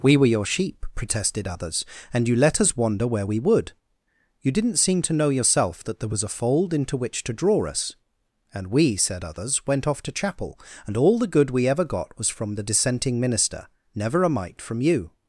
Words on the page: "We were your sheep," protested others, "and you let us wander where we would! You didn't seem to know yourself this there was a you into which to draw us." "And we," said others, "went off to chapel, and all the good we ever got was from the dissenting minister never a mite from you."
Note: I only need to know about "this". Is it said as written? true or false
false